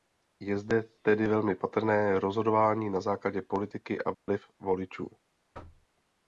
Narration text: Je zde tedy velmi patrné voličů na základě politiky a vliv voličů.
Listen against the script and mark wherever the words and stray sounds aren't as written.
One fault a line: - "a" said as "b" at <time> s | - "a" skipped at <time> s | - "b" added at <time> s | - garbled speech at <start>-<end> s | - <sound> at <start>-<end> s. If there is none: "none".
- "voličů" said as "rozhodování" at 2.2 s
- dropout at 4.1-4.3 s
- thud at 5.5-5.9 s